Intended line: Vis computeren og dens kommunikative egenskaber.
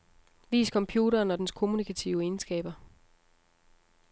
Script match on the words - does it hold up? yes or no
yes